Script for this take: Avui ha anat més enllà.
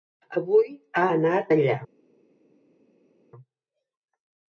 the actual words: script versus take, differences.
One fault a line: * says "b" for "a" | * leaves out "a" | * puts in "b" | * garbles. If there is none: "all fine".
* leaves out "més"